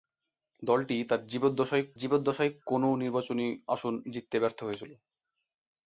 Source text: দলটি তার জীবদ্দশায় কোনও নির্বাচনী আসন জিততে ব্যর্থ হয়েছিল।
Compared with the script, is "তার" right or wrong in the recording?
right